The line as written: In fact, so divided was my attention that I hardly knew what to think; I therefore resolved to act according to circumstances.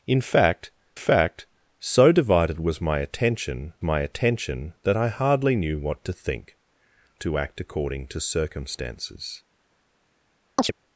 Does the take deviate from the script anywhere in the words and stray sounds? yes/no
yes